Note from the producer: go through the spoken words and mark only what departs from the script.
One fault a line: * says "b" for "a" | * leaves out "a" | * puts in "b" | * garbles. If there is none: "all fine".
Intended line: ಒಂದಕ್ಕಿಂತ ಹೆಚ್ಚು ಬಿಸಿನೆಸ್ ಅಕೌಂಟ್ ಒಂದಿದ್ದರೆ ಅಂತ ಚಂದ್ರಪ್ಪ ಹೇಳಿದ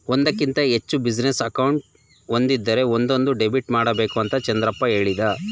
* puts in "ಒಂದೊಂದು ಡೆಬಿಟ್ ಮಾಡಬೇಕು"